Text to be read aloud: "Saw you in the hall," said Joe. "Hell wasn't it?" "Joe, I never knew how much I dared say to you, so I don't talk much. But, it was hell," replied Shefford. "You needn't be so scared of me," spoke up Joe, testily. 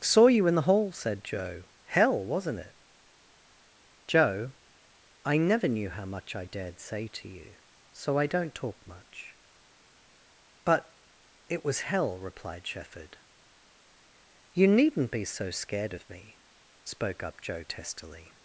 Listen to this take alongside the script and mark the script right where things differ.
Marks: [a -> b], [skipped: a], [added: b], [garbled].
"Saw you in the hall," said Joe. "Hell wasn't it?" "Joe, I never knew how much I dared say to you, so I don't talk much. But, it was hell," replied Shefford. "You needn't be so scared of me," spoke up Joe, testily.